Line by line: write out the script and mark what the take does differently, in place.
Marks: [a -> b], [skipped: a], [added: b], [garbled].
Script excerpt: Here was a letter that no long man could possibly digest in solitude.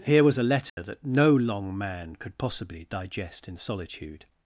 Here was a letter that no long man could possibly digest in solitude.